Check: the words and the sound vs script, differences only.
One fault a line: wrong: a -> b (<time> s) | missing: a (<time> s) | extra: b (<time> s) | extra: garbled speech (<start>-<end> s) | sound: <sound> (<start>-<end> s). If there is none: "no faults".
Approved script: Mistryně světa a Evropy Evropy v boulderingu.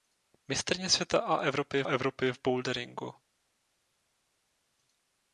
no faults